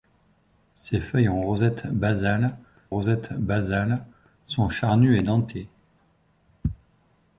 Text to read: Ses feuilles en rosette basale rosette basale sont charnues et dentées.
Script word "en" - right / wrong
right